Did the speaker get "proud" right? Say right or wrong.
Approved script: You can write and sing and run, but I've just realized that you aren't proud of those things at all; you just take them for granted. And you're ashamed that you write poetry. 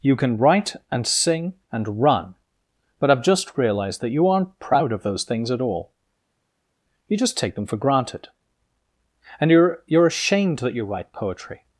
right